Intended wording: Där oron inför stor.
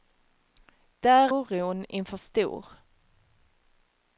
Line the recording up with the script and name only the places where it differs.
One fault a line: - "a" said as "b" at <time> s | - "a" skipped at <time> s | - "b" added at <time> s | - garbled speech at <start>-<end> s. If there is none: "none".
none